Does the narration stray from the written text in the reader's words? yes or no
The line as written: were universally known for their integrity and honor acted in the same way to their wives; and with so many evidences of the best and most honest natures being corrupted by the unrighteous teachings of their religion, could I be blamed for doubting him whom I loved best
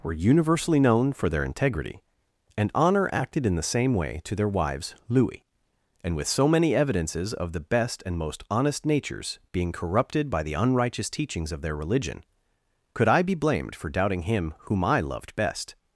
yes